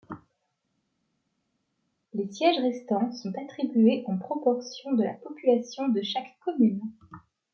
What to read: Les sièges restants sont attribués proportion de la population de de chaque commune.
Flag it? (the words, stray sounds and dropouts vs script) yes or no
yes